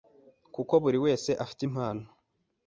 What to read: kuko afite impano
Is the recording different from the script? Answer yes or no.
yes